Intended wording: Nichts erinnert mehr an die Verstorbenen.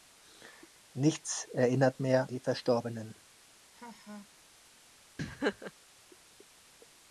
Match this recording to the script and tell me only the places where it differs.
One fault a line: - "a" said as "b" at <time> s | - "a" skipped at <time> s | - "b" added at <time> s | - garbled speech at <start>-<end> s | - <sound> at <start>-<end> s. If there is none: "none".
- "an" skipped at 2.3 s
- laugh at 3.7-4.3 s
- laugh at 5.2-5.7 s